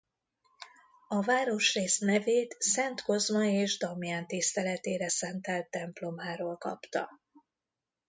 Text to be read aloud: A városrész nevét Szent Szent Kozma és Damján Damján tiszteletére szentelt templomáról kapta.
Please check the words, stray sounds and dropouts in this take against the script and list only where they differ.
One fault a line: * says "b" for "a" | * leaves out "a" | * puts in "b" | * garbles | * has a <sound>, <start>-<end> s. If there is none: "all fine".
* leaves out "Szent"
* leaves out "Damján"